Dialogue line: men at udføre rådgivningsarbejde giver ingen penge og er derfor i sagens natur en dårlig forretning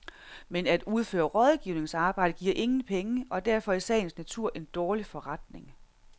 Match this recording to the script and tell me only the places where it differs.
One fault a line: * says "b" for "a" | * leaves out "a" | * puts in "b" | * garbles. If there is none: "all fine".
all fine